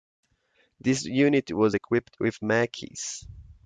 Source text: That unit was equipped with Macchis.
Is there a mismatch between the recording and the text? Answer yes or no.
yes